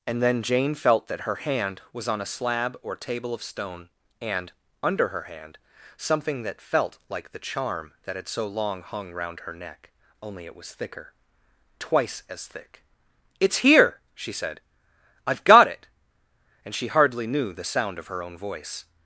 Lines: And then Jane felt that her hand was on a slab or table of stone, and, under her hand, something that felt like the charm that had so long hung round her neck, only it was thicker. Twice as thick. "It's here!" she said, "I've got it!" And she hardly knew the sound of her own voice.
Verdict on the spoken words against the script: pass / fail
pass